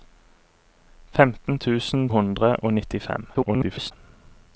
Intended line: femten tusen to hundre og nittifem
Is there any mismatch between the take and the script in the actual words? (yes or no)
yes